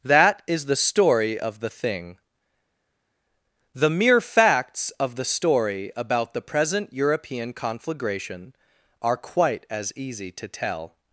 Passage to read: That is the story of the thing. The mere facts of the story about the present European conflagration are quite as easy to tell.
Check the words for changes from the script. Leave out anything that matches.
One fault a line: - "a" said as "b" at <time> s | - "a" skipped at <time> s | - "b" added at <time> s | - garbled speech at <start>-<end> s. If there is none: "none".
none